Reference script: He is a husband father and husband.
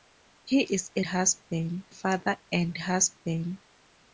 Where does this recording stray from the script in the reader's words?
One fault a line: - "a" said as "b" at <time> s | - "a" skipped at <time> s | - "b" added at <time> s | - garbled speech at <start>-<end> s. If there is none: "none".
none